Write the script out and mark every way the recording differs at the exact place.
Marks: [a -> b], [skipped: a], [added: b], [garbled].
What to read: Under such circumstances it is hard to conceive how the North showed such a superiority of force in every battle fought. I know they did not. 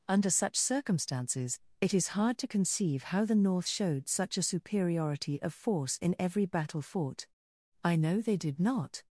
Under such circumstances it is hard to conceive how the North showed such a superiority of force in every battle fought. I know they did not.